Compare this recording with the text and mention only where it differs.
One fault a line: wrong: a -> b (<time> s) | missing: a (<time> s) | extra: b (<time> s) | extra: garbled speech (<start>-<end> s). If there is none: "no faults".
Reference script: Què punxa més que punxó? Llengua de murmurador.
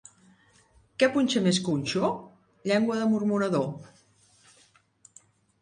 no faults